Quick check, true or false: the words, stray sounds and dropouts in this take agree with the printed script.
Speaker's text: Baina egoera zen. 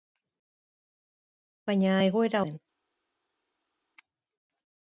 true